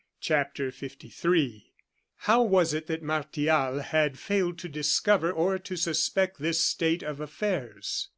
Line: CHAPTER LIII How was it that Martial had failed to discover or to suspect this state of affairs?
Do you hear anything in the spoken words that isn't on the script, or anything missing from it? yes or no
no